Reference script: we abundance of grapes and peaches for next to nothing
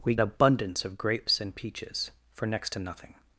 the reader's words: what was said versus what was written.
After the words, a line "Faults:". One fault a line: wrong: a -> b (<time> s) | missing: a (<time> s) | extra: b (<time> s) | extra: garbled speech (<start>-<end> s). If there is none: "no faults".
we abundance of grapes and peaches for next to nothing
Faults:
no faults